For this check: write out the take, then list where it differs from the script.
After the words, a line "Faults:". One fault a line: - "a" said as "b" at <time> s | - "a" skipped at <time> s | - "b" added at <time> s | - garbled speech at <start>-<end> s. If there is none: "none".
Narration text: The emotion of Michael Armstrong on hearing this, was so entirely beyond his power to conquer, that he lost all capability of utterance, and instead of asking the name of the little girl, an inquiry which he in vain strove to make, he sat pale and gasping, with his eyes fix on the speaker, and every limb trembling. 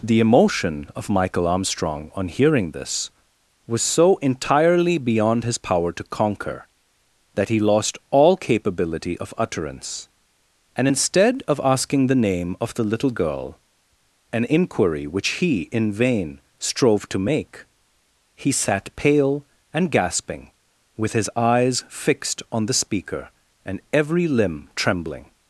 The emotion of Michael Armstrong on hearing this, was so entirely beyond his power to conquer, that he lost all capability of utterance, and instead of asking the name of the little girl, an inquiry which he in vain strove to make, he sat pale and gasping, with his eyes fixed on the speaker, and every limb trembling.
Faults:
- "fix" said as "fixed" at 21.9 s